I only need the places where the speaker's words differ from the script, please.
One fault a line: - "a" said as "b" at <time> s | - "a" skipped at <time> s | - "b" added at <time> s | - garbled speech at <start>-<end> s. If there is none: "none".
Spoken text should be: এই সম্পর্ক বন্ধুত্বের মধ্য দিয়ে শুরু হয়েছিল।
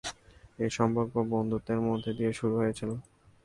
none